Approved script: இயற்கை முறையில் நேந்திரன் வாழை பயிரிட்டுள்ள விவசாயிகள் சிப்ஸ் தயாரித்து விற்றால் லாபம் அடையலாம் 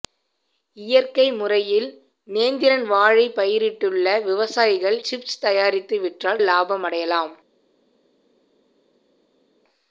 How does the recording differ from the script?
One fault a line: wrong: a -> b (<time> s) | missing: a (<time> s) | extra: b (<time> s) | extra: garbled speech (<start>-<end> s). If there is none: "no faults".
no faults